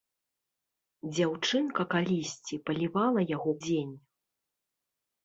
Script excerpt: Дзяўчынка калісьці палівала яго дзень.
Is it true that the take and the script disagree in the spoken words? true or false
false